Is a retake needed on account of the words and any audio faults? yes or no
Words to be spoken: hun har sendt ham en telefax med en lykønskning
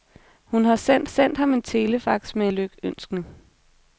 yes